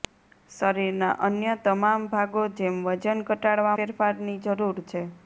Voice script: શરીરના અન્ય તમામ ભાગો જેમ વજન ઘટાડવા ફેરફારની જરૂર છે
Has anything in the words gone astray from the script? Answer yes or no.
no